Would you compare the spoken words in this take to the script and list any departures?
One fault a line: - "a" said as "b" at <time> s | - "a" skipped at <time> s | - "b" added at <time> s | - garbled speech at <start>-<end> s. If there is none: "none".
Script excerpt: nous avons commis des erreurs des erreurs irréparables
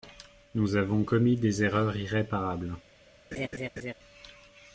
- "des erreurs" skipped at 1.9 s